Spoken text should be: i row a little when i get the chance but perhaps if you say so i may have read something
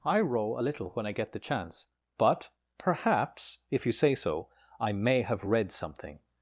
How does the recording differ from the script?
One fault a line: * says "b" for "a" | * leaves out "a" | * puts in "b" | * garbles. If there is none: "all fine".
all fine